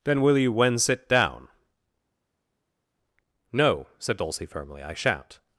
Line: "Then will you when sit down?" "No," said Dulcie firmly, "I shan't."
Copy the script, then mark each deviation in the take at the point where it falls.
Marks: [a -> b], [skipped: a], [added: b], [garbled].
"Then will you when sit down?" "No," said Dulcie firmly, "I shan't."